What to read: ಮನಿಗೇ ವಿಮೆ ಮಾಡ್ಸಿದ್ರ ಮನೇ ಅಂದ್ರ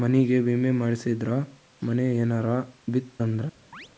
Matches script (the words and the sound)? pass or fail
fail